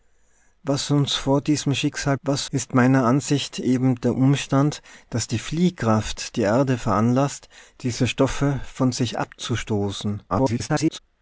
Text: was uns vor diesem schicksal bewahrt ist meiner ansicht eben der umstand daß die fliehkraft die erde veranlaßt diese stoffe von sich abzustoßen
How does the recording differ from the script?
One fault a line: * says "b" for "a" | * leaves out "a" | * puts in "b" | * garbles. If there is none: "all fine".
* says "was" for "bewahrt"
* garbles